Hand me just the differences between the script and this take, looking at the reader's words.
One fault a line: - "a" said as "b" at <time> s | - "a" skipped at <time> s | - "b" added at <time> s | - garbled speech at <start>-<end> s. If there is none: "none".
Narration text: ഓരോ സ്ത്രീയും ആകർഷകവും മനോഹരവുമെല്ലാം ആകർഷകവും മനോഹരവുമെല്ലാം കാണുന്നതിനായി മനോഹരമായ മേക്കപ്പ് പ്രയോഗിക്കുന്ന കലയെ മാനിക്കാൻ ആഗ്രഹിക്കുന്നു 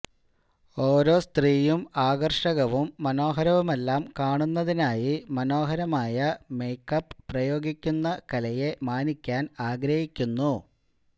- "ആകർഷകവും മനോഹരവുമെല്ലാം" skipped at 4.0 s